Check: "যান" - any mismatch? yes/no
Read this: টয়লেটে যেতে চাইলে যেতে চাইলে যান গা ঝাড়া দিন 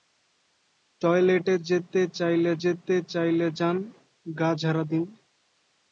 no